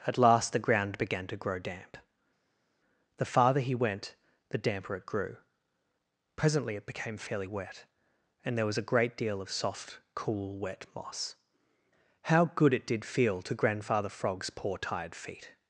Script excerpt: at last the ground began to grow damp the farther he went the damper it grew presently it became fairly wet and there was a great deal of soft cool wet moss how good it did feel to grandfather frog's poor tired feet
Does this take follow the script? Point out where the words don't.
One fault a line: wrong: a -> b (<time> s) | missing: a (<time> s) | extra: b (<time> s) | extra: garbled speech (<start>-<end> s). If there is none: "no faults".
no faults